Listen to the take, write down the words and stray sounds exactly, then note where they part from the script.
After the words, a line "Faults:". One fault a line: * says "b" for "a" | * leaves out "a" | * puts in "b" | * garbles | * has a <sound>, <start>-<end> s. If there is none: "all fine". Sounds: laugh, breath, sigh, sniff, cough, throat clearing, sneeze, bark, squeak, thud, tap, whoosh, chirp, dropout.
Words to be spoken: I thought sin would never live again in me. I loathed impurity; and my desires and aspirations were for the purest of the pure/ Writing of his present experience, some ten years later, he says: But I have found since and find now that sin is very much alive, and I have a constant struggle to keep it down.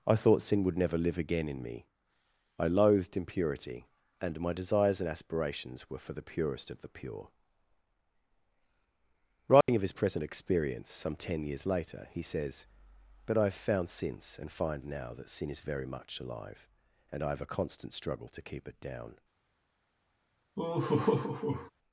I thought sin would never live again in me. I loathed impurity; and my desires and aspirations were for the purest of the pure/ Writing of his present experience, some ten years later, he says: But I have found since and find now that sin is very much alive, and I have a constant struggle to keep it down.
Faults:
* has a dropout, 9.6-9.7 s
* has a laugh, 20.6-21.7 s